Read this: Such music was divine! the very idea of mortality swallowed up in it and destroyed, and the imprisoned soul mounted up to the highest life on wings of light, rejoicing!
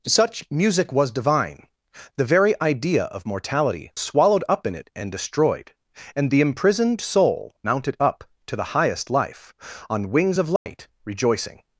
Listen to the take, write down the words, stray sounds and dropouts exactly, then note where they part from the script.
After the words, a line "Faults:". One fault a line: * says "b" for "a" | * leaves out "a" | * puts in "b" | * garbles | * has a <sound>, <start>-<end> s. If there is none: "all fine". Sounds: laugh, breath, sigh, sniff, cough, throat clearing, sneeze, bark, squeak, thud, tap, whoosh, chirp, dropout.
Such music was divine! the very idea of mortality swallowed up in it and destroyed, and the imprisoned soul mounted up to the highest life on wings of light, rejoicing!
Faults:
* has a dropout, 10.6-10.7 s